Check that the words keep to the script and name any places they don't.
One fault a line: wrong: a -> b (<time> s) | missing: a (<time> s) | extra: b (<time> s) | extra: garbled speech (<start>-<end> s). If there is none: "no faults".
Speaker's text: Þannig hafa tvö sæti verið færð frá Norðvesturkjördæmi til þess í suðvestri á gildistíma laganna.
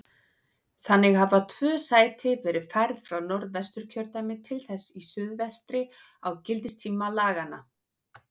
no faults